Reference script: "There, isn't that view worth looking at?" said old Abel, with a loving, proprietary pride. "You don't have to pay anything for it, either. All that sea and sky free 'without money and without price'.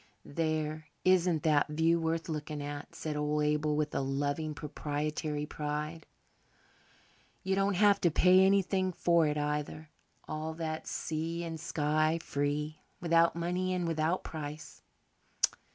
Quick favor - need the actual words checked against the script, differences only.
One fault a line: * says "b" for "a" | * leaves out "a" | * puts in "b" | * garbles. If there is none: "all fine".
all fine